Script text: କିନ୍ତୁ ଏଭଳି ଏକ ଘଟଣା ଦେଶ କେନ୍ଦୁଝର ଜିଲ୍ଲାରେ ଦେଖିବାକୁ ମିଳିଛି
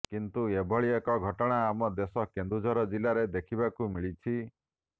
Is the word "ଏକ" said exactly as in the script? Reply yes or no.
yes